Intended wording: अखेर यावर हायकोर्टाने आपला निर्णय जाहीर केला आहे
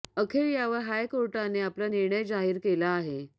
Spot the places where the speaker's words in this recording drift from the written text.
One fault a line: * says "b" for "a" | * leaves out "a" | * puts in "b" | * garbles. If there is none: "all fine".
all fine